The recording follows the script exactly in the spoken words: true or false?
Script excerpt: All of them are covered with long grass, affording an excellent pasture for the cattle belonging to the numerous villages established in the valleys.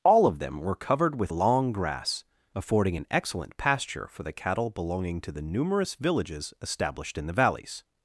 false